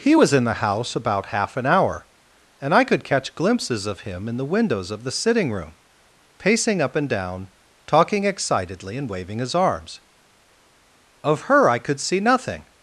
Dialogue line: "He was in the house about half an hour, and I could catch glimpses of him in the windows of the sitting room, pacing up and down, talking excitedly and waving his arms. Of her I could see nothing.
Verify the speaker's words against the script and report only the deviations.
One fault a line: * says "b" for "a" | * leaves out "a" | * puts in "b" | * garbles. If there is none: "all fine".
all fine